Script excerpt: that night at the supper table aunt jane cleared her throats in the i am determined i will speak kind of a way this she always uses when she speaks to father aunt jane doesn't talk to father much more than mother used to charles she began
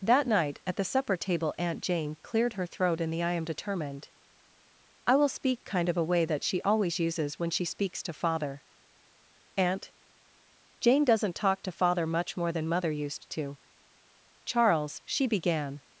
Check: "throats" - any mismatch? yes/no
yes